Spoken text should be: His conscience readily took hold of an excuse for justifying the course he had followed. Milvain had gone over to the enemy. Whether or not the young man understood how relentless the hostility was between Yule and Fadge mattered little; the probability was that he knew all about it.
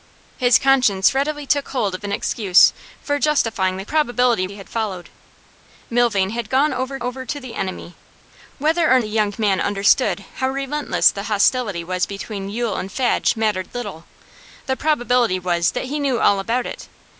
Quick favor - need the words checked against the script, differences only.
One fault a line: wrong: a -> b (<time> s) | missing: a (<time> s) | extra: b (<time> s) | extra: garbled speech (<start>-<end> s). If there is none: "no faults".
wrong: course -> probability (3.8 s)
extra: over (7.0 s)
missing: not (9.0 s)